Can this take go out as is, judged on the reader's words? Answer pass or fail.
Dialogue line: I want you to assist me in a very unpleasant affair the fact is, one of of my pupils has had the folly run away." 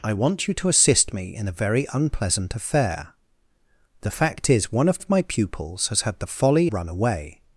pass